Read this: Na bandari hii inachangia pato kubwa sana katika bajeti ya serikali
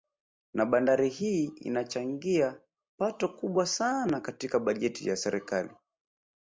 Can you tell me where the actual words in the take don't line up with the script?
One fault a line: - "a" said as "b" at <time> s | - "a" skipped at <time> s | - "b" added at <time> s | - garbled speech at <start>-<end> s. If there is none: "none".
none